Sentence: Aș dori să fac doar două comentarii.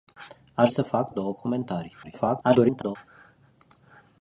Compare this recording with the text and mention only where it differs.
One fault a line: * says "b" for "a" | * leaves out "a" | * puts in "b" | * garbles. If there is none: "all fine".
* leaves out "dori"
* leaves out "doar"
* garbles